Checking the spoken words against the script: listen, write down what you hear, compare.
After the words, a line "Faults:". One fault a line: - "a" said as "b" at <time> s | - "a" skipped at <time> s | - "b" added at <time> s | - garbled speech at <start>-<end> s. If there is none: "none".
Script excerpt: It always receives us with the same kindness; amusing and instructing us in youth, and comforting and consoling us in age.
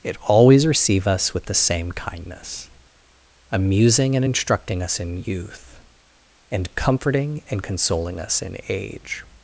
It always receive us with the same kindness; amusing and instructing us in youth, and comforting and consoling us in age.
Faults:
- "receives" said as "receive" at 0.7 s